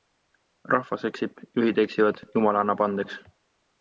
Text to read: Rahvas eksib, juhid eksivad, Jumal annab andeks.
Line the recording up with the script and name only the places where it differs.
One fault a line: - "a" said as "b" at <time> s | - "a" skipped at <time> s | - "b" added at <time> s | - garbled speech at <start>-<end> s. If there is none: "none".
none